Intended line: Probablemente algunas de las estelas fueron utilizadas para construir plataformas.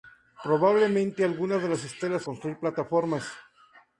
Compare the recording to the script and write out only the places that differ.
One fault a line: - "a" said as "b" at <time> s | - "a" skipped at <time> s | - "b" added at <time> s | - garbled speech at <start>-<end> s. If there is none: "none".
- "fueron utilizadas para" skipped at 2.2 s